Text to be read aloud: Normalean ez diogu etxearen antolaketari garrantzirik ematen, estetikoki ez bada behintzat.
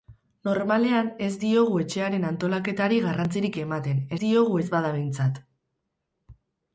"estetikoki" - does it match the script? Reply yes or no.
no